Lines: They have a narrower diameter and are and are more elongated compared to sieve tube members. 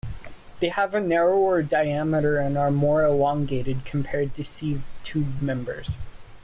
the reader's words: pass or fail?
fail